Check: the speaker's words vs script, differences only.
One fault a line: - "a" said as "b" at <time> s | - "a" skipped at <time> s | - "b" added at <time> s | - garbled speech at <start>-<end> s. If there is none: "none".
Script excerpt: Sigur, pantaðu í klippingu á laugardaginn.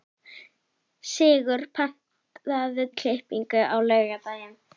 none